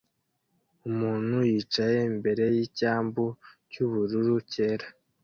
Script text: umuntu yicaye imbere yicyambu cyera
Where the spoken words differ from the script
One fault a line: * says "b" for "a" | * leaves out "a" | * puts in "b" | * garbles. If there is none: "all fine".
* puts in "cyubururu"